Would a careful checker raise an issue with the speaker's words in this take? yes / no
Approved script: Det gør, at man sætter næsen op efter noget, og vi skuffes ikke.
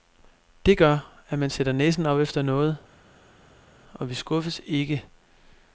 no